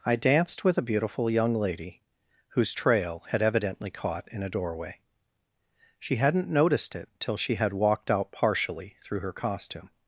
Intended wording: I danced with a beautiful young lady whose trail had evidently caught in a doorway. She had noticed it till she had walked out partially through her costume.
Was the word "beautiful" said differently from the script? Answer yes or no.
no